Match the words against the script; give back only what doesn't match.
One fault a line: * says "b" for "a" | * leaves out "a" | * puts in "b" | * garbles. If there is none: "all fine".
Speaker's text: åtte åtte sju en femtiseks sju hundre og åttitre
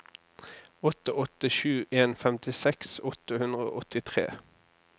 * says "åtte" for "sju"